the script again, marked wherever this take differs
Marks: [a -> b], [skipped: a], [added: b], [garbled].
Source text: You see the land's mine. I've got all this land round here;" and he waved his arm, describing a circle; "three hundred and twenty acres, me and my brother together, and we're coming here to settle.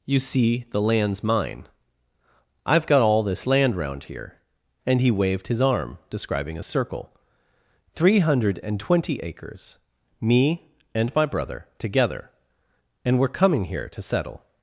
You see the land's mine. I've got all this land round here;" and he waved his arm, describing a circle; "three hundred and twenty acres, me and my brother together, and we're coming here to settle.